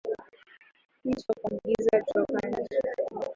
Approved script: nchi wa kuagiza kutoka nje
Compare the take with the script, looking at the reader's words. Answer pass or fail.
pass